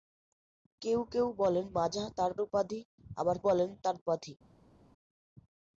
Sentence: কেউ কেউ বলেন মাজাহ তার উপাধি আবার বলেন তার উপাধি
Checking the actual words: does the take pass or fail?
pass